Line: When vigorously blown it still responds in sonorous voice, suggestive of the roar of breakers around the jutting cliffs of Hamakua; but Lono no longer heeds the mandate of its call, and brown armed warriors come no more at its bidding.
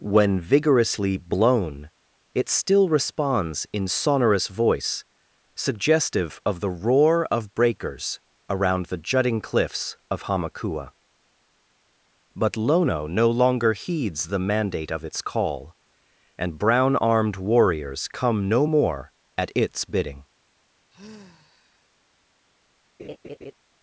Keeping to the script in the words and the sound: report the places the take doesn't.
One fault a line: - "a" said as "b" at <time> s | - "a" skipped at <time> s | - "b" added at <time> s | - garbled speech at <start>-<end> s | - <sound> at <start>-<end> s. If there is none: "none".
- sigh at 20.9-21.9 s
- laugh at 23.0-23.5 s